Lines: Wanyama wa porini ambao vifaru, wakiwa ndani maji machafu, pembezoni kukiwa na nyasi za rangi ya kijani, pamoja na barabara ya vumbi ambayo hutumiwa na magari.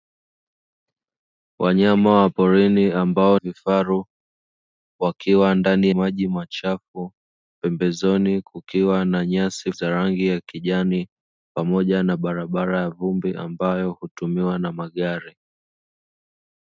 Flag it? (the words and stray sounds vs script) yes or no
no